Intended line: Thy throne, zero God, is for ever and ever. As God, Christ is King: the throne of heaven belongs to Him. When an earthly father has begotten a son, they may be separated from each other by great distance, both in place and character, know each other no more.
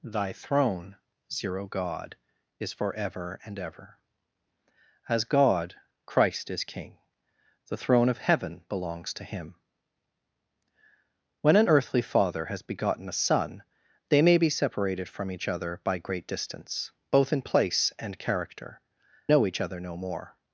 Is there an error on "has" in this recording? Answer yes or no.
no